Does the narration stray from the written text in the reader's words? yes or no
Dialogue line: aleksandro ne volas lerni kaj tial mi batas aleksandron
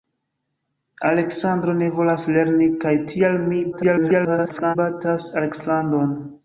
yes